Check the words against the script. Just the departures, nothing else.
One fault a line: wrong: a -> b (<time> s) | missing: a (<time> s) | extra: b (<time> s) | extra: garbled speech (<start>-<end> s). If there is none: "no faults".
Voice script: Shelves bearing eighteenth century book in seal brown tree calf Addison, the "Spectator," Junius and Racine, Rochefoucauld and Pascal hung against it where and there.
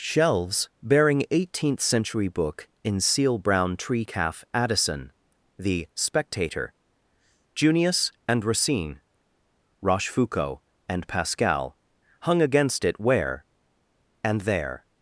no faults